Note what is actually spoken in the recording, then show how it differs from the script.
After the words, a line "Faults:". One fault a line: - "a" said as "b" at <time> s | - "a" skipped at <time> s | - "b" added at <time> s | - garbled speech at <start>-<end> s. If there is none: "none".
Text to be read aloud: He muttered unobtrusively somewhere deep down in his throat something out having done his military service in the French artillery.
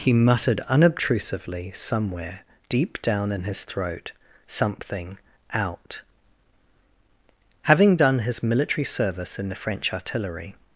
He muttered unobtrusively somewhere deep down in his throat something out having done his military service in the French artillery.
Faults:
none